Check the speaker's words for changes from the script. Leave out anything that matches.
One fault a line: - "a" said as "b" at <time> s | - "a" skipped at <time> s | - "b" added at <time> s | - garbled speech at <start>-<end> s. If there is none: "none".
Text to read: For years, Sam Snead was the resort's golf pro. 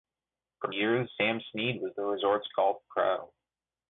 none